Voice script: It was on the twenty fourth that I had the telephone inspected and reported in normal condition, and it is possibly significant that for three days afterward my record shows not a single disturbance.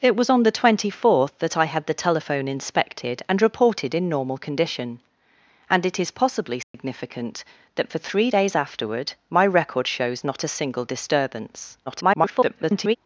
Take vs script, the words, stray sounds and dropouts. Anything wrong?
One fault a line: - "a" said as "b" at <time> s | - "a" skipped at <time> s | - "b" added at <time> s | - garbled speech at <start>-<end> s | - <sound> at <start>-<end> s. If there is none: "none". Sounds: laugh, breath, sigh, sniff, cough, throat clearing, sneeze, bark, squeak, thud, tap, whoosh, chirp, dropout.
- dropout at 6.6-6.7 s
- garbled speech at 11.9-13.0 s